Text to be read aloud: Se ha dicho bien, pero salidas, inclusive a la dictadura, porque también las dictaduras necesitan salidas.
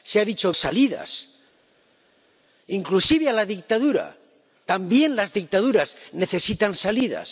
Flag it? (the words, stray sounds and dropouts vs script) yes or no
yes